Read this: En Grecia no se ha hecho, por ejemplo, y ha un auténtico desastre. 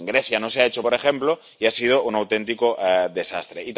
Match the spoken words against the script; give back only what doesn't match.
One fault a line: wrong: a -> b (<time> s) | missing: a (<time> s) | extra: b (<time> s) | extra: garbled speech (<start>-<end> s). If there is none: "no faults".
extra: sido (1.7 s)